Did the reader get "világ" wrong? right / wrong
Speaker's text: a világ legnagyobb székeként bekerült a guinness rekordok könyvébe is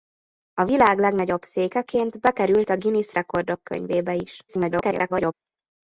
right